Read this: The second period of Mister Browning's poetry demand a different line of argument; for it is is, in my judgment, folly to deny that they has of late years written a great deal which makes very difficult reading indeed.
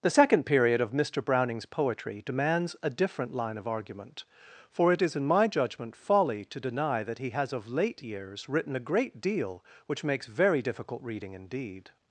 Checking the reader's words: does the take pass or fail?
fail